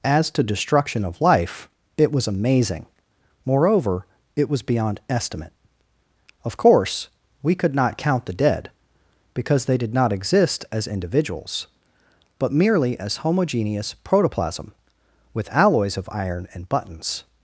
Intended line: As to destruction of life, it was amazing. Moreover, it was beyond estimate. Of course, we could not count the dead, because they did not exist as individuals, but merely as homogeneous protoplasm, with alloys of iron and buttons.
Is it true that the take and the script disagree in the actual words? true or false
false